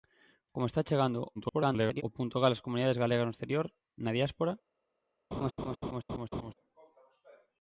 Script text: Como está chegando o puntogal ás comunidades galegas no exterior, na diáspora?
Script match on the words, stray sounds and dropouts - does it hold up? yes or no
no